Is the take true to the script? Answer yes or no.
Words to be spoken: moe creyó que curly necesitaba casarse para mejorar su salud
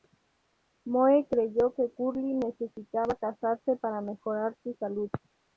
yes